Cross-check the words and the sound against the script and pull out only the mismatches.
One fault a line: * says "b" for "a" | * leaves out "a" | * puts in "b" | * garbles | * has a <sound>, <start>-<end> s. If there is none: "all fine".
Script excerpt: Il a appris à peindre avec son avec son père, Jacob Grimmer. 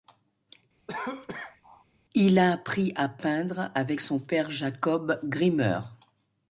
* has a cough, 0.9-1.8 s
* leaves out "avec son"